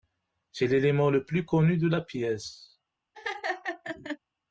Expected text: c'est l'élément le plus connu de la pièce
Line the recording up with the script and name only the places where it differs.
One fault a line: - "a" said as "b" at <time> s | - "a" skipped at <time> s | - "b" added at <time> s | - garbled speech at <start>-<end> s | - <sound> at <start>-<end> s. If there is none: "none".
- laugh at 3.1-4.2 s